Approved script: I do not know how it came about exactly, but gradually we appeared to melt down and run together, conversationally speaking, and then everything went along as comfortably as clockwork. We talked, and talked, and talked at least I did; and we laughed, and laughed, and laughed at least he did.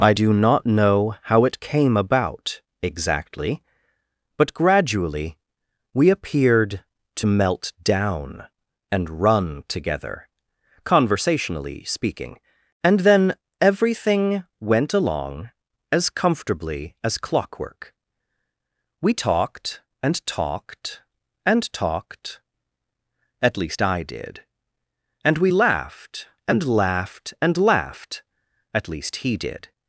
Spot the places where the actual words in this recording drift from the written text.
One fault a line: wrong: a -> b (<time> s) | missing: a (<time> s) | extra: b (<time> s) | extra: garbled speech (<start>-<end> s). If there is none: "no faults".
no faults